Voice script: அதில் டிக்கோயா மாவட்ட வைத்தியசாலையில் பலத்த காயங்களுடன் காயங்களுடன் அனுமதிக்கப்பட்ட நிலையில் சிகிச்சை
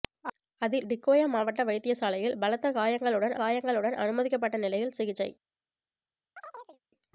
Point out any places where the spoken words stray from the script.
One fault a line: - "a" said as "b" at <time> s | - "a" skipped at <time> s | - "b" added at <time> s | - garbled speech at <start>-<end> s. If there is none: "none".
none